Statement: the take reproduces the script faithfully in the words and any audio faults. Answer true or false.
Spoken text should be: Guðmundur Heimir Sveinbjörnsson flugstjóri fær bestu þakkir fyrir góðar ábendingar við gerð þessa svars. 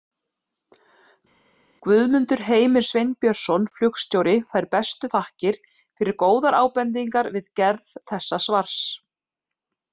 true